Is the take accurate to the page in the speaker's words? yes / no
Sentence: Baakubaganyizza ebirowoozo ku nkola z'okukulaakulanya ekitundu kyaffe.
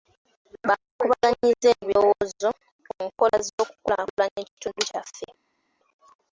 yes